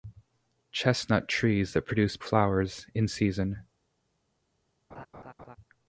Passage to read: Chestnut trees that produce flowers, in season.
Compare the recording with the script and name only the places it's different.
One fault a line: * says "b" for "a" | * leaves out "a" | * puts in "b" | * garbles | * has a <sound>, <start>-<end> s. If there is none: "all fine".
* has a laugh, 4.9-5.6 s